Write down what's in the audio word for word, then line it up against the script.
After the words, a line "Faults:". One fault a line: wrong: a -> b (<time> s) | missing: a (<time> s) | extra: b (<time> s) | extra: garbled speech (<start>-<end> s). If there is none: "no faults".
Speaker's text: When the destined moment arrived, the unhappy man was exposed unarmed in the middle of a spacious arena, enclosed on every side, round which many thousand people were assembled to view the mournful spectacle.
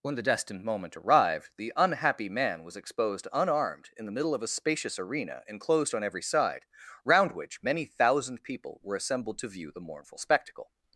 When the destined moment arrived, the unhappy man was exposed unarmed in the middle of a spacious arena, enclosed on every side, round which many thousand people were assembled to view the mournful spectacle.
Faults:
no faults